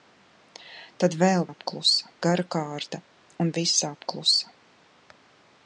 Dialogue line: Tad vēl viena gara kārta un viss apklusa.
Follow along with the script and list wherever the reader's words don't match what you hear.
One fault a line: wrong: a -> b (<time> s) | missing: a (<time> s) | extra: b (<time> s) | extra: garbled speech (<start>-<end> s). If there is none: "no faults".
wrong: viena -> apklusa (1.5 s)